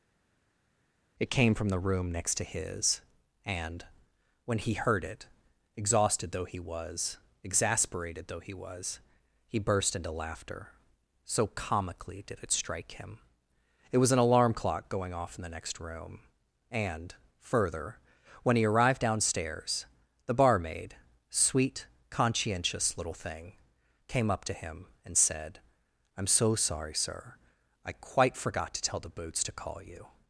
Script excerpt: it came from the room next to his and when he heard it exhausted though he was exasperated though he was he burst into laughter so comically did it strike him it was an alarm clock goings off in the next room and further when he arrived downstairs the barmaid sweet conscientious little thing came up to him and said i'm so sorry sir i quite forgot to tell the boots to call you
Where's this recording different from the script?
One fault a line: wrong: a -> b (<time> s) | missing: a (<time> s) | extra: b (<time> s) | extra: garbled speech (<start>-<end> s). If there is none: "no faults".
wrong: goings -> going (14.9 s)